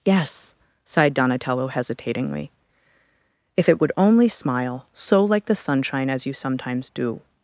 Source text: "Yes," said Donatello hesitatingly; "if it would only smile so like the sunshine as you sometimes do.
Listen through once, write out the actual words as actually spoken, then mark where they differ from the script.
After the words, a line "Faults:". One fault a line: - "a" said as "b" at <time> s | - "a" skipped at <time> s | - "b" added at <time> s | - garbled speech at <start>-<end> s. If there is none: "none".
"Yes," sighed Donatello hesitatingly; "if it would only smile so like the sunshine as you sometimes do.
Faults:
- "said" said as "sighed" at 0.8 s